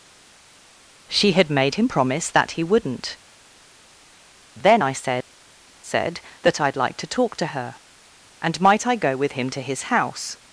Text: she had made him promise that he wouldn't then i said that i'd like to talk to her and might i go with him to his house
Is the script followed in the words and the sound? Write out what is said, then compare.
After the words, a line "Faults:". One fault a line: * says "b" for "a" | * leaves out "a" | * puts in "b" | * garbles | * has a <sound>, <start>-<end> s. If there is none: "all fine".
she had made him promise that he wouldn't then i said said that i'd like to talk to her and might i go with him to his house
Faults:
* puts in "said"